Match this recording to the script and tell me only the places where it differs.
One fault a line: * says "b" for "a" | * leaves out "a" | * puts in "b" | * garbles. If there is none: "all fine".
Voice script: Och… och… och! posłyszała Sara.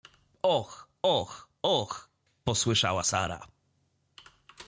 all fine